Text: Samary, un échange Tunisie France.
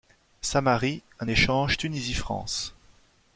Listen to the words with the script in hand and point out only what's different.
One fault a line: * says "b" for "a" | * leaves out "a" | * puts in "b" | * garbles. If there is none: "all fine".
all fine